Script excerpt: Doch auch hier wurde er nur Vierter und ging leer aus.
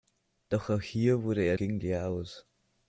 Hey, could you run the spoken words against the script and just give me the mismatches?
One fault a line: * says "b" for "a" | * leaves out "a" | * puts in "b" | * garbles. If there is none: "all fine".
* leaves out "nur Vierter und"